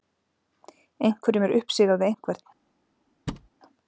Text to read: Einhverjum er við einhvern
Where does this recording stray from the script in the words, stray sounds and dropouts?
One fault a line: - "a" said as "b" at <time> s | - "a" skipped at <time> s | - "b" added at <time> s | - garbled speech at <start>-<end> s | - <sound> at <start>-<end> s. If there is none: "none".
- "uppsigað" added at 1.6 s
- thud at 3.3-3.5 s